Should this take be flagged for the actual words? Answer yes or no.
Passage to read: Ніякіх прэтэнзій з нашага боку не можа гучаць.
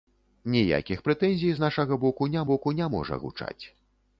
yes